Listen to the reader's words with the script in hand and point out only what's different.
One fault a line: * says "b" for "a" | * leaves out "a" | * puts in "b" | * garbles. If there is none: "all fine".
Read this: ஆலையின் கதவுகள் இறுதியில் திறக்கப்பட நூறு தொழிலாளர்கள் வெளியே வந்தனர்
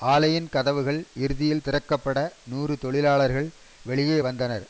all fine